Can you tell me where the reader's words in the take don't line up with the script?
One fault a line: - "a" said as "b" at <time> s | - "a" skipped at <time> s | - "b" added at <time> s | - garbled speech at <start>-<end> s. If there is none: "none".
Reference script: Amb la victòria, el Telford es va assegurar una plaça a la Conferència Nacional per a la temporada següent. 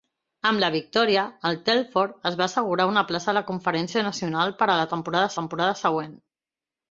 - "temporada" added at 5.4 s